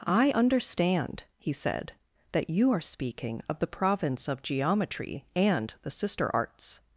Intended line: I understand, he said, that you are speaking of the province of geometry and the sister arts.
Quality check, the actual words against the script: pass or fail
pass